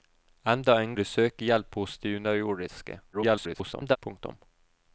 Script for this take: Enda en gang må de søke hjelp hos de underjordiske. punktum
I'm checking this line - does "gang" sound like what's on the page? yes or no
no